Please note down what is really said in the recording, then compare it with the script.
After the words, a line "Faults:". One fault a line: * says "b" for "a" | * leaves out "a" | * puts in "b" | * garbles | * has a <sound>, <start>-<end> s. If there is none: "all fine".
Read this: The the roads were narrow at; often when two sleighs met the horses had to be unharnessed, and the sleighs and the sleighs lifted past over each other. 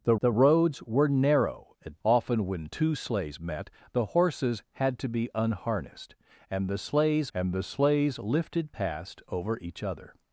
The the roads were narrow at; often when two sleighs met the horses had to be unharnessed, and the sleighs and the sleighs lifted past over each other.
Faults:
all fine